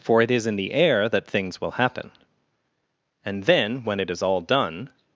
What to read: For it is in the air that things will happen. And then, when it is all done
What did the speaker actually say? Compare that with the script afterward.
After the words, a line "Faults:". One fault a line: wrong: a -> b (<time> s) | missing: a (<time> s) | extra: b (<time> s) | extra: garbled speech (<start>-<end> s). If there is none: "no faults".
For it is in the air that things will happen. And then, when it is all done
Faults:
no faults